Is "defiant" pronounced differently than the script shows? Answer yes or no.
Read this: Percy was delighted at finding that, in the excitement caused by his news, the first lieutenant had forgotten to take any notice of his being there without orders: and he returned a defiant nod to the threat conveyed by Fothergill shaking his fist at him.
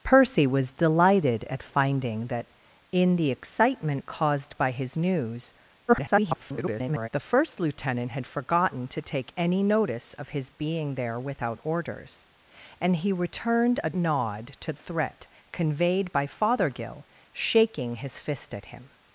yes